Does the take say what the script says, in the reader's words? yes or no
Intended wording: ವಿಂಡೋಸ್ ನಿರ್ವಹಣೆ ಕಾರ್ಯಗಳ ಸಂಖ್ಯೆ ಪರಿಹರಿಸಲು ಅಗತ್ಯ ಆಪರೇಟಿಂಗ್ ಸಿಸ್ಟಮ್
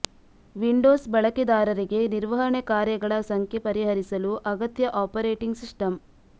no